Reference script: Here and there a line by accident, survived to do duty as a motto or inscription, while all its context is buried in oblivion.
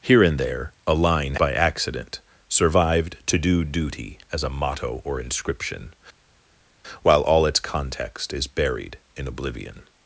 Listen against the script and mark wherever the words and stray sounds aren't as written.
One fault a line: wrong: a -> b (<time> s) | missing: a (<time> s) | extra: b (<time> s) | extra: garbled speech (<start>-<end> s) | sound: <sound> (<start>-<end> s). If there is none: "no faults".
no faults